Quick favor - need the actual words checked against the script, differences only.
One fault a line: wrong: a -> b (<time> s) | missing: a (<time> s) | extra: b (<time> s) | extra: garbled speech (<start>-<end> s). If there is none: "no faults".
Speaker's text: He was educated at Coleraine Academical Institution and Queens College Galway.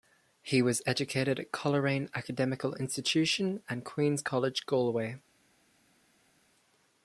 no faults